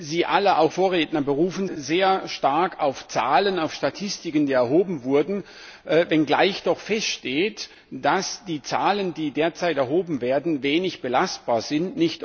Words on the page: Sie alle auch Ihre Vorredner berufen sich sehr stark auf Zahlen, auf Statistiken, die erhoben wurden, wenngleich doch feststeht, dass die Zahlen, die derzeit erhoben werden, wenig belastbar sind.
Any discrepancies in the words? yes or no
yes